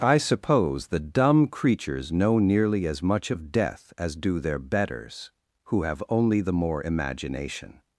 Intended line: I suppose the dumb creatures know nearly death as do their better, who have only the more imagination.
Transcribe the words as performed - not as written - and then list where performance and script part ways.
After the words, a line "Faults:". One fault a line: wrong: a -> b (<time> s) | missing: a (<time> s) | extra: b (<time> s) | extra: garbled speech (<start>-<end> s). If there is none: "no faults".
I suppose the dumb creatures know nearly as much of death as do their betters, who have only the more imagination.
Faults:
extra: as much of (2.9 s)
wrong: better -> betters (4.6 s)